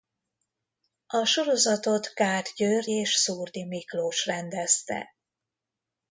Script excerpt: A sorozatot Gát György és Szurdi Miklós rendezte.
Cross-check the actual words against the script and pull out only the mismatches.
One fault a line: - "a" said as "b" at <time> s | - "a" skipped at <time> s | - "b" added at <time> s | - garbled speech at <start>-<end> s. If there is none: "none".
none